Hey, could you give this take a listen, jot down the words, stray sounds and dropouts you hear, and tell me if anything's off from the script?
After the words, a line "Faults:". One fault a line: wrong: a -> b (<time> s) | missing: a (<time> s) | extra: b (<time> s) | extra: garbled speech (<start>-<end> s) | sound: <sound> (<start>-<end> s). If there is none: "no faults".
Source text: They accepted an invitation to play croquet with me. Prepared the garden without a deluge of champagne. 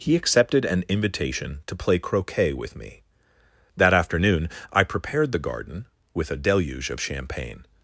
He accepted an invitation to play croquet with me. That afternoon I prepared the garden with a deluge of champagne.
Faults:
wrong: They -> He (0.0 s)
extra: That afternoon I (3.8 s)
wrong: without -> with (6.1 s)